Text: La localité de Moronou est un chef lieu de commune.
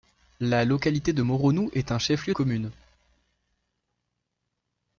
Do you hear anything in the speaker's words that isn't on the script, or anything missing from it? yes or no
yes